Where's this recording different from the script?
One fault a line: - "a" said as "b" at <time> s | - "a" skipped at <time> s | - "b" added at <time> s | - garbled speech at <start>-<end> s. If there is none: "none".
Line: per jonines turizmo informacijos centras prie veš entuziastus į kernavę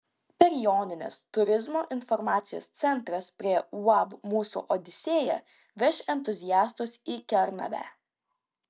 - "uab mūsų odisėja" added at 3.8 s